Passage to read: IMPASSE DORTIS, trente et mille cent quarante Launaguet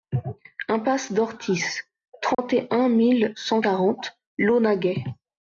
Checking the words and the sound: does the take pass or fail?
fail